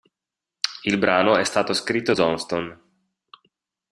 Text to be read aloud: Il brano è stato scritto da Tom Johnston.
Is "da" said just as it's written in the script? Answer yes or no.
no